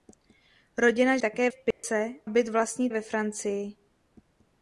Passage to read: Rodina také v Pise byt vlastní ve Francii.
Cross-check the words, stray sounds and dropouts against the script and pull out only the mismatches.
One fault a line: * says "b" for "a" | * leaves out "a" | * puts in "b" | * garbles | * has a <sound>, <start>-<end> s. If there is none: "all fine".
* has a dropout, 1.7-1.8 s